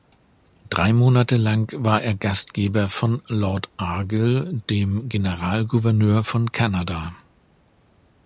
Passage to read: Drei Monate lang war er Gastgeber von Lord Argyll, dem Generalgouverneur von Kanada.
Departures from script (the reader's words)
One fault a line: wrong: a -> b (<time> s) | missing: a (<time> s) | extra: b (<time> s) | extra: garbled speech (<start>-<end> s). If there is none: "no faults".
no faults